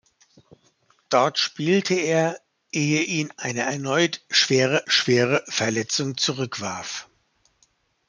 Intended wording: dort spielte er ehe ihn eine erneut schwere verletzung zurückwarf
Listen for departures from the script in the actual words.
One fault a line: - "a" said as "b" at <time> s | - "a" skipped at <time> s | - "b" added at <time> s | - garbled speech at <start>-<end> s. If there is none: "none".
- "schwere" added at 4.9 s